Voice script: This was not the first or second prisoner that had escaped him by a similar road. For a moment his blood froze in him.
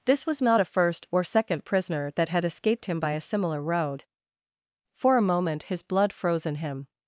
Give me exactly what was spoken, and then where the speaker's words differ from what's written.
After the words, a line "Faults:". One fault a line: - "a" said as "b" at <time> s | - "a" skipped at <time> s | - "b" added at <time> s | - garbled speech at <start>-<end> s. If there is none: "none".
This was not a first or second prisoner that had escaped him by a similar road. For a moment his blood froze in him.
Faults:
- "the" said as "a" at 0.6 s